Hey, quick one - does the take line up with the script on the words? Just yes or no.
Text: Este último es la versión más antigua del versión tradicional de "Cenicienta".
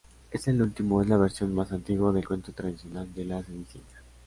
no